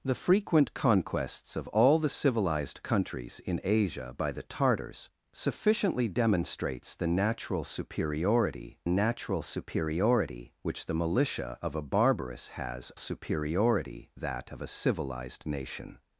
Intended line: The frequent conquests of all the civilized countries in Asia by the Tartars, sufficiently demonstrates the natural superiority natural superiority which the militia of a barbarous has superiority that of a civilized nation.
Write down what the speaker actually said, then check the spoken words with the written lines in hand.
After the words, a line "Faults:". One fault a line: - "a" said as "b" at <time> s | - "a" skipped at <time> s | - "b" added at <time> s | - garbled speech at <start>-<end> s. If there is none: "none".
The frequent conquests of all the civilized countries in Asia by the Tartars, sufficiently demonstrates the natural superiority natural superiority which the militia of a barbarous has superiority that of a civilized nation.
Faults:
none